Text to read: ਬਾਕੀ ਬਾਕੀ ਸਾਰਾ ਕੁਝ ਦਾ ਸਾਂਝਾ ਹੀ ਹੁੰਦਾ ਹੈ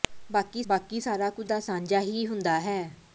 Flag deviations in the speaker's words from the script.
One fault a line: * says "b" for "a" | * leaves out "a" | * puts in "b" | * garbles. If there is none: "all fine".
all fine